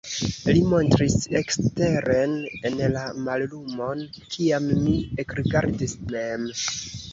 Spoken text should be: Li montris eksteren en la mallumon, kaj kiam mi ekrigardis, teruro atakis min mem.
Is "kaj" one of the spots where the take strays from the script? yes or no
yes